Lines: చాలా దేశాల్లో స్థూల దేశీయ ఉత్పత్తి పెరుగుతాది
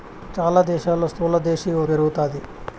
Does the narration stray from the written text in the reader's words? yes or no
yes